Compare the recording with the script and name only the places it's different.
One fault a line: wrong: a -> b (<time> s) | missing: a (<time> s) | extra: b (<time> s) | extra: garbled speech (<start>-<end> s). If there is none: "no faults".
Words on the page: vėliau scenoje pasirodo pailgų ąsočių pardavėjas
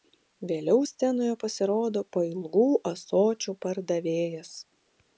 no faults